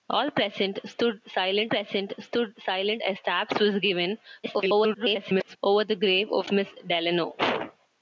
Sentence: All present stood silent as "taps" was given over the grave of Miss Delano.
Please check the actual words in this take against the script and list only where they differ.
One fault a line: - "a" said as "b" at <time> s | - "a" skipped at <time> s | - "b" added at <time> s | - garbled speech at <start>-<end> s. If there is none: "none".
- "present stood silent" added at 1.7 s
- garbled speech at 4.4-5.6 s